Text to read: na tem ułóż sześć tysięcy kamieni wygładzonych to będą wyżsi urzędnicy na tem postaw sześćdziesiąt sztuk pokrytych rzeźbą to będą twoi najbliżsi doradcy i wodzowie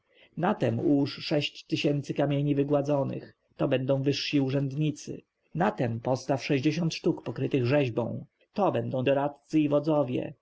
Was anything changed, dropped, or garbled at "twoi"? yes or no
yes